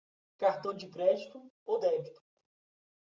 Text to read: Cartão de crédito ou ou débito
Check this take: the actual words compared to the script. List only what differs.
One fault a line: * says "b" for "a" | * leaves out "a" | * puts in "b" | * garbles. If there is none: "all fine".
* leaves out "ou"